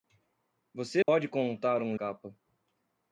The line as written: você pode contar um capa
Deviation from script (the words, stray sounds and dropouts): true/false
true